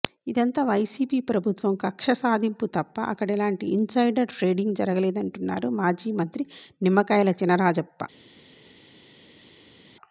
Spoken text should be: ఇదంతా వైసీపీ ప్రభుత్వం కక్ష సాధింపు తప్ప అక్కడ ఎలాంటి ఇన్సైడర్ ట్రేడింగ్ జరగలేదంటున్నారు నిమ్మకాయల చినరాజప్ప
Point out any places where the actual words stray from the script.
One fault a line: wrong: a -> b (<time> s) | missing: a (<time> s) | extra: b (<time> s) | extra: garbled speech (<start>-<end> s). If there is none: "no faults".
extra: మాజీ మంత్రి (5.8 s)